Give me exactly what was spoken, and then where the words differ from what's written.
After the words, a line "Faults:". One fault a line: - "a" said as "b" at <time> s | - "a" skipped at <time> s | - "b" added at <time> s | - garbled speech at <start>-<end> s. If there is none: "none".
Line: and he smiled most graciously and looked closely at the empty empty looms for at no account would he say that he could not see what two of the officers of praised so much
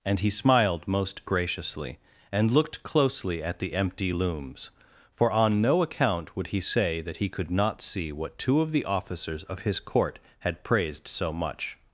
and he smiled most graciously and looked closely at the empty looms for on no account would he say that he could not see what two of the officers of his court had praised so much
Faults:
- "empty" skipped at 4.1 s
- "at" said as "on" at 5.3 s
- "his court had" added at 9.6 s